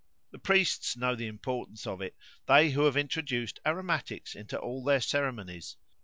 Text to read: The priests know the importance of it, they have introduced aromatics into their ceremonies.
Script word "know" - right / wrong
right